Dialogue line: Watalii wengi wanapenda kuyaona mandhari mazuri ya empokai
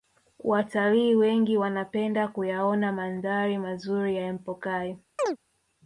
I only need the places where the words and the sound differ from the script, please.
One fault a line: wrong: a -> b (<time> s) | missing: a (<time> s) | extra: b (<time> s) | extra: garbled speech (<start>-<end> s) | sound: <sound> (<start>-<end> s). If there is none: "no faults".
sound: chirp (5.2-5.4 s)